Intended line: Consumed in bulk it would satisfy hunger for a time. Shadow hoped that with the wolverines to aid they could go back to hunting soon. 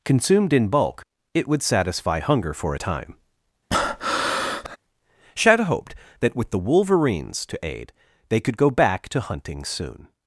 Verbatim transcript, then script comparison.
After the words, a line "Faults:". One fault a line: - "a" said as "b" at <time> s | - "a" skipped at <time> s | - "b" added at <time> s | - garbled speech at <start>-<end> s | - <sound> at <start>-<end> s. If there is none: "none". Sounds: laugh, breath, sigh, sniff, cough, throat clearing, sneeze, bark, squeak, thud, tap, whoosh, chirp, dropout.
Consumed in bulk it would satisfy hunger for a time. Shadow hoped that with the wolverines to aid they could go back to hunting soon.
Faults:
- breath at 3.7-4.8 s